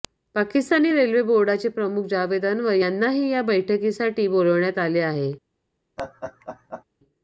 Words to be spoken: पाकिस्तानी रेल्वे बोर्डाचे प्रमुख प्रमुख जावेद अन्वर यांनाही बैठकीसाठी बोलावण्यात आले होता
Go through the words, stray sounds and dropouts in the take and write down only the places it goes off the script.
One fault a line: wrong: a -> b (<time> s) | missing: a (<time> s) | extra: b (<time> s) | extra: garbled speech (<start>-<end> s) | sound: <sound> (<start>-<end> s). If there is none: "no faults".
missing: प्रमुख (2.1 s)
extra: या (3.3 s)
wrong: होता -> आहे (5.0 s)
sound: laugh (6.0-6.8 s)